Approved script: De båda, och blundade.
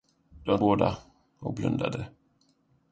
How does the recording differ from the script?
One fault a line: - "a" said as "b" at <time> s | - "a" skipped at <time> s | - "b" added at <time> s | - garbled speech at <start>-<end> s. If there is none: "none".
none